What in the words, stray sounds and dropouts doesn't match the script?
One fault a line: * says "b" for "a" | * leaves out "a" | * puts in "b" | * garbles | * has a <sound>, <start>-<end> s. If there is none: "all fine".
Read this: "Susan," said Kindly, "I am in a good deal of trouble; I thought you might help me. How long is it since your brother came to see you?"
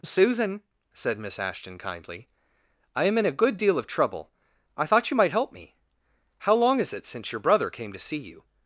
* puts in "Miss Ashton"